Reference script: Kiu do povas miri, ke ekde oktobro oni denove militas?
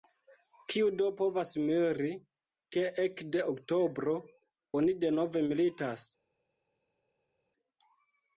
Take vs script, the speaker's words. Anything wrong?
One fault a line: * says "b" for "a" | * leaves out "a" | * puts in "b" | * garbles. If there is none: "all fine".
all fine